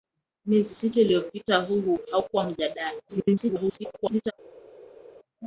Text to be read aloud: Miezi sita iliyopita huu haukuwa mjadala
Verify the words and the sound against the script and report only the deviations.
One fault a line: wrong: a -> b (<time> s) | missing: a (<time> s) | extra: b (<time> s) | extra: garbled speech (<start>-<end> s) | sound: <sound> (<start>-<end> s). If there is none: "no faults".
extra: garbled speech (3.1-4.3 s)